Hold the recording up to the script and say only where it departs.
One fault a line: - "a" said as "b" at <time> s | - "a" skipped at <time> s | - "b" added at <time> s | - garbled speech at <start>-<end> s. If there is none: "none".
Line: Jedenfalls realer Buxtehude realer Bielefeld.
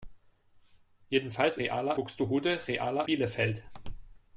none